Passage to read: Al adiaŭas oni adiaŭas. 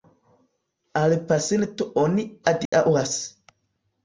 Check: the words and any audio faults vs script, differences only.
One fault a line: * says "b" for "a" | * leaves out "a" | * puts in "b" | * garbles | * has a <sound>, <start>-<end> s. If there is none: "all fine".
* says "pasinto" for "adiaŭas"
* has a dropout, 2.7-2.7 s